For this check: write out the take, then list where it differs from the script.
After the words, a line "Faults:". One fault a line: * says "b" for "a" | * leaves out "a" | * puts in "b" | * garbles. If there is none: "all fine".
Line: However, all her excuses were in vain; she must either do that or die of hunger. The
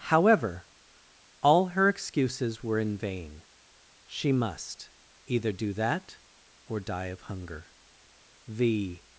However, all her excuses were in vain; she must either do that or die of hunger. The
Faults:
all fine